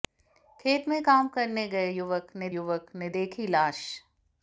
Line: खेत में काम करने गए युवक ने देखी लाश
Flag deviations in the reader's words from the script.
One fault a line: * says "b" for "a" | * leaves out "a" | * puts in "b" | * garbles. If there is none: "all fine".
* puts in "युवक ने"